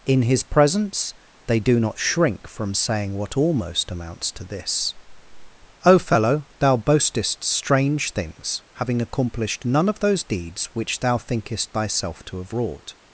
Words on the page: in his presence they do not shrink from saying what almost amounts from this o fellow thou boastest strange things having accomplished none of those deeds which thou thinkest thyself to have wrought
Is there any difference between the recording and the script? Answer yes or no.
yes